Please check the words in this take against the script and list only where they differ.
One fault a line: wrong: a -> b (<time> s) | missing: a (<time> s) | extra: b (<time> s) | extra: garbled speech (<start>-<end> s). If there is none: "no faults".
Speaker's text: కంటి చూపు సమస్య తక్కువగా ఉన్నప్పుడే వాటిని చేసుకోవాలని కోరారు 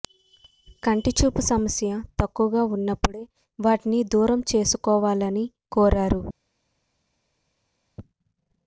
extra: దూరం (4.1 s)